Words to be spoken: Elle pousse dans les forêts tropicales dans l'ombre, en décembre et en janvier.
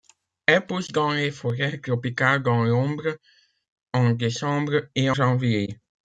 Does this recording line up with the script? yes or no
no